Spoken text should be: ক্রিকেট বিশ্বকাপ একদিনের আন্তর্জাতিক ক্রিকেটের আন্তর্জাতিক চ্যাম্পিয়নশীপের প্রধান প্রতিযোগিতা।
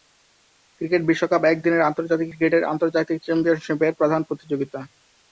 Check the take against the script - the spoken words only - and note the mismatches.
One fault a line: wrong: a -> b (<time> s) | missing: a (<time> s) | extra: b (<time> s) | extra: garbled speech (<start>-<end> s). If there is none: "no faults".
no faults